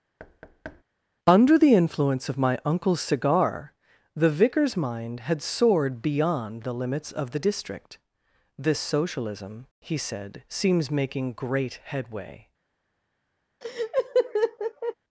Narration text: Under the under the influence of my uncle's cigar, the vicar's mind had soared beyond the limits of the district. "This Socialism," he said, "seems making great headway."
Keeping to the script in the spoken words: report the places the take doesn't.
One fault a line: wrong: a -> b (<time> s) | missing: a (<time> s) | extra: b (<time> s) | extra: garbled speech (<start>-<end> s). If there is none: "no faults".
missing: under the (1.7 s)